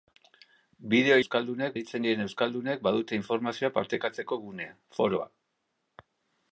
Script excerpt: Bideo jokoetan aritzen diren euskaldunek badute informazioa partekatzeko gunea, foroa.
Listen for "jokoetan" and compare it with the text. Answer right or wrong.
wrong